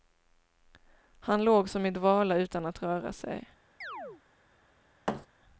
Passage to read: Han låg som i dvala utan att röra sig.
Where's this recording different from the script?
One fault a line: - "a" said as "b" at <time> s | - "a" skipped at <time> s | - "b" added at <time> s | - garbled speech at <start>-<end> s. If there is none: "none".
none